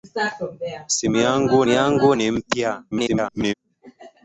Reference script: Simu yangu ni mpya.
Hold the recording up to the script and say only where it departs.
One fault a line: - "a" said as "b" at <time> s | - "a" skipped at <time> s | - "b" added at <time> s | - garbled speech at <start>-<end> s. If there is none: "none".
- "yangu" added at 1.7 s
- garbled speech at 2.9-3.5 s